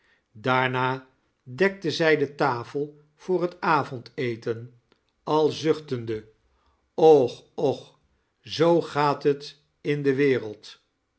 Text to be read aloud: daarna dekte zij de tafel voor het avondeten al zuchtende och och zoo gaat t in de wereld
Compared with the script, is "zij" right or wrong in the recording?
right